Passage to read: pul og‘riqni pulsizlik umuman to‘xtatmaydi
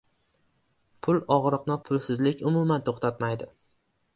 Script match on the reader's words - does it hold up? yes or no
yes